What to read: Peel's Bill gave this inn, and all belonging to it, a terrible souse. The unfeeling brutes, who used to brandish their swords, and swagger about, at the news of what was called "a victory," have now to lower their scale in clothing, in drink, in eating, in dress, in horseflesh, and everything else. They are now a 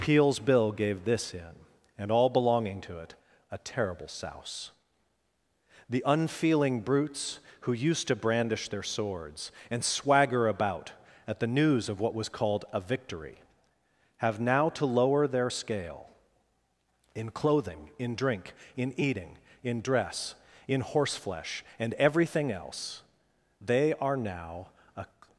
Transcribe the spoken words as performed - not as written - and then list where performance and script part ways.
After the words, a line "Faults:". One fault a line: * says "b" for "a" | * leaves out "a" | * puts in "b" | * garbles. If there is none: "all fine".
Peel's Bill gave this inn, and all belonging to it, a terrible souse. The unfeeling brutes, who used to brandish their swords, and swagger about, at the news of what was called "a victory," have now to lower their scale in clothing, in drink, in eating, in dress, in horseflesh, and everything else. They are now a
Faults:
all fine